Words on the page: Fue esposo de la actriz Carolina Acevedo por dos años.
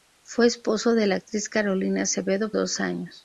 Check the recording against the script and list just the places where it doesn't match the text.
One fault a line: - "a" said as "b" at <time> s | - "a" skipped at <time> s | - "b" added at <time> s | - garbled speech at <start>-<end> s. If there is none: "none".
- "por" skipped at 2.5 s